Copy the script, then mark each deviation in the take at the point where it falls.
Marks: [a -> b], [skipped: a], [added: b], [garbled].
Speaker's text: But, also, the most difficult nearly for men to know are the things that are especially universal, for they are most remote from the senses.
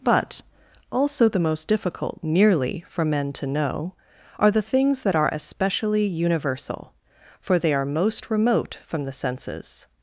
But, also, the most difficult nearly for men to know are the things that are especially universal, for they are most remote from the senses.